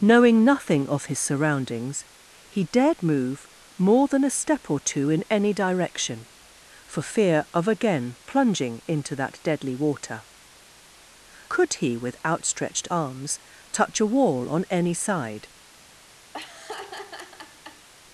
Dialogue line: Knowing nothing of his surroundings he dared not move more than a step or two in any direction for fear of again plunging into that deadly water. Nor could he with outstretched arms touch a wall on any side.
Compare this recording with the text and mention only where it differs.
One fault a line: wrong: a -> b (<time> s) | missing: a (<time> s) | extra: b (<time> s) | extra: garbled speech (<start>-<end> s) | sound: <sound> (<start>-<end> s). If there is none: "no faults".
missing: not (3.0 s)
missing: Nor (10.2 s)
sound: laugh (16.3-17.9 s)